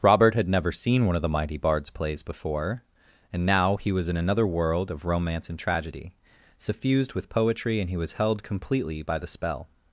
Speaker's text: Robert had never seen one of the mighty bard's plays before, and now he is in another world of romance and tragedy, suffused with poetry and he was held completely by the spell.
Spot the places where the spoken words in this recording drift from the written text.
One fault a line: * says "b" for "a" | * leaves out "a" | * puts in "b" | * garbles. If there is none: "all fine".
* says "was" for "is"